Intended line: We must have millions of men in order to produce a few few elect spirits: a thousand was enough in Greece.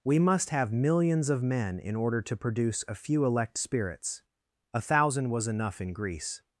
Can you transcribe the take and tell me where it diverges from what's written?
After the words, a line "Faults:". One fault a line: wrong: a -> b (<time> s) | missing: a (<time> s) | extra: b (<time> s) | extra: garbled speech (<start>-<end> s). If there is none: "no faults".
We must have millions of men in order to produce a few elect spirits: a thousand was enough in Greece.
Faults:
missing: few (3.2 s)